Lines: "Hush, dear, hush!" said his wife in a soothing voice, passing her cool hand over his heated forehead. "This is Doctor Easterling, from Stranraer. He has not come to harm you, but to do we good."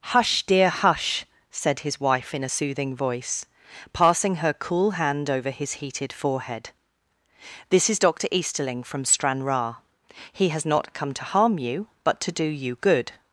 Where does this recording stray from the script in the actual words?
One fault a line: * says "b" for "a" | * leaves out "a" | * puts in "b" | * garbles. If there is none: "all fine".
* says "you" for "we"